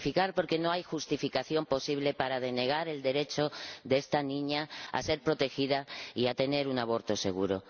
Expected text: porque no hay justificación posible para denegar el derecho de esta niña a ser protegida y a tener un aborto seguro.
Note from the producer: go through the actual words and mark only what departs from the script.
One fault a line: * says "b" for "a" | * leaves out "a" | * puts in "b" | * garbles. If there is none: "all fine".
all fine